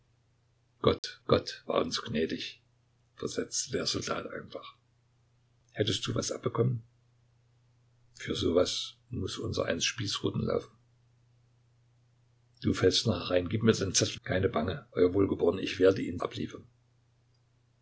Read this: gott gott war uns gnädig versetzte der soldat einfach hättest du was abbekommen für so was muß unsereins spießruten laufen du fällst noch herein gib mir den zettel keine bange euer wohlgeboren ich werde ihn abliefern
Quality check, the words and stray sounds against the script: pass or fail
fail